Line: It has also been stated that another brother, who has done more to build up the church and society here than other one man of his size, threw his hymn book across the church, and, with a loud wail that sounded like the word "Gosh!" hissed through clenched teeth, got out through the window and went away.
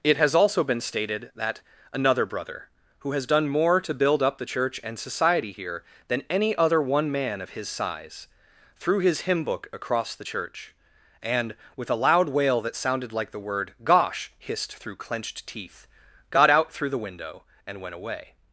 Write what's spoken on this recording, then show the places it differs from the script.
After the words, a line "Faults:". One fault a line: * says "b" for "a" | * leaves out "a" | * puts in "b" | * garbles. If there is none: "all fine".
It has also been stated that another brother, who has done more to build up the church and society here than any other one man of his size, threw his hymn book across the church, and, with a loud wail that sounded like the word "Gosh!" hissed through clenched teeth, got out through the window and went away.
Faults:
* puts in "any"